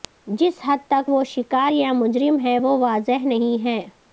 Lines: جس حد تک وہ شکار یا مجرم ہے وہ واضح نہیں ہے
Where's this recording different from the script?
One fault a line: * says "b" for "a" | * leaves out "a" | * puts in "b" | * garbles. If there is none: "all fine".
all fine